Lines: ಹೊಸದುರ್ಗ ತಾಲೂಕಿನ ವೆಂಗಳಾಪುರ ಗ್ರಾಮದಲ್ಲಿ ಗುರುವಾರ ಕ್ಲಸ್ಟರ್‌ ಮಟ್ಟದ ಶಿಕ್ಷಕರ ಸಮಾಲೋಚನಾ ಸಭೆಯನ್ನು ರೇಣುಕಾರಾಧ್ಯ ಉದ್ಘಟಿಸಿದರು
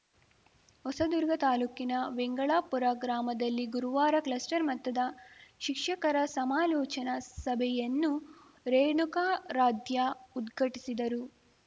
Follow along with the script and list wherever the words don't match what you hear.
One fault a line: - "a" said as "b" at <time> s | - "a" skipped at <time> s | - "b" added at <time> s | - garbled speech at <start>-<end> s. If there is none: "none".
none